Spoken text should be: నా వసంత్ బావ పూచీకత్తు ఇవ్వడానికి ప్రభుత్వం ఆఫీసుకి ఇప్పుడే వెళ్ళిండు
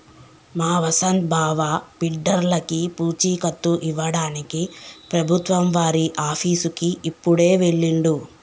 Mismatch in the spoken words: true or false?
true